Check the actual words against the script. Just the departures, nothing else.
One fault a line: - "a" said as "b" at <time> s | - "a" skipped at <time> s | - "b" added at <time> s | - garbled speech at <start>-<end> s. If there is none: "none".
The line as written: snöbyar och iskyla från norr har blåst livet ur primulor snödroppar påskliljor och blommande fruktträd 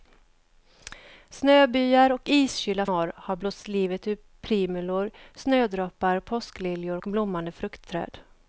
- "från" skipped at 2.9 s